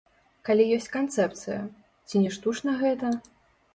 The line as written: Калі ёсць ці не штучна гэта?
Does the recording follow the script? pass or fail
fail